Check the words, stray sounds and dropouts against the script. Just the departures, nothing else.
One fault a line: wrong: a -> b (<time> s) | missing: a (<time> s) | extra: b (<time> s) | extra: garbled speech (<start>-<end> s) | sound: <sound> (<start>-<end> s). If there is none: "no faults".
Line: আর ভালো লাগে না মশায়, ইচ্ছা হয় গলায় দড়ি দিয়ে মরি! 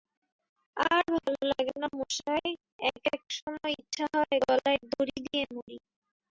sound: dropout (1.2-1.3 s)
extra: এক এক সময় (2.9 s)